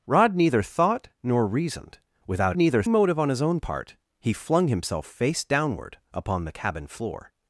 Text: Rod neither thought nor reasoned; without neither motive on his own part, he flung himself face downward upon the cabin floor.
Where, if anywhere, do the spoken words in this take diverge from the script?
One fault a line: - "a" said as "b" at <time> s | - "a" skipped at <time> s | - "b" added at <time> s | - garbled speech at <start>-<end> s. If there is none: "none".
none